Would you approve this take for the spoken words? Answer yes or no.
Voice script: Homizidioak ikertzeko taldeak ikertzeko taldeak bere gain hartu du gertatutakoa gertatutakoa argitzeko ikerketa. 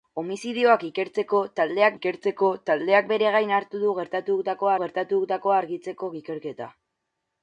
yes